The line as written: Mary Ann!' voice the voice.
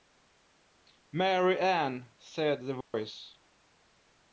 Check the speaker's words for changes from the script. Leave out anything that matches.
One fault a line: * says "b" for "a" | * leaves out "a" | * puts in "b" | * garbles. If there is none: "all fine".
* says "said" for "voice"